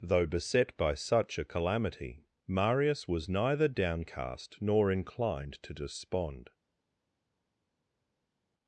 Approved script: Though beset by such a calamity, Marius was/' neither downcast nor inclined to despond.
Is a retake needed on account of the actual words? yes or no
no